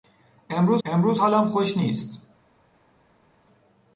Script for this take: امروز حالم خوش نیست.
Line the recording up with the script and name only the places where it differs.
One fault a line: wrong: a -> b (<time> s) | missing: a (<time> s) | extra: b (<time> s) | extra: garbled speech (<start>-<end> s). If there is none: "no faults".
extra: امروز (0.8 s)